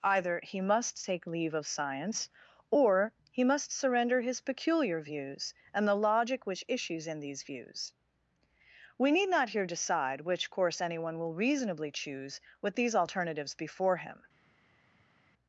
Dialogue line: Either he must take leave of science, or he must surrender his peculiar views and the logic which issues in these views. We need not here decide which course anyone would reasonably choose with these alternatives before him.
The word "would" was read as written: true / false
false